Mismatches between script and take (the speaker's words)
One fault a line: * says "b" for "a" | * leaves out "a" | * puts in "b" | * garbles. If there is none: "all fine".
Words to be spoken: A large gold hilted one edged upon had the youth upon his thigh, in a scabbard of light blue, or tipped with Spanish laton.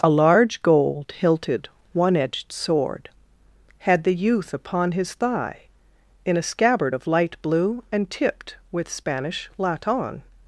* says "sword" for "upon"
* says "and" for "or"